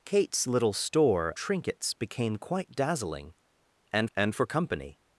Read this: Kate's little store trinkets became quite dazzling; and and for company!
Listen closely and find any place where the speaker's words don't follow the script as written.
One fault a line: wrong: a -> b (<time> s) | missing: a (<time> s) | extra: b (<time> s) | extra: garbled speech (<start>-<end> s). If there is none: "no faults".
no faults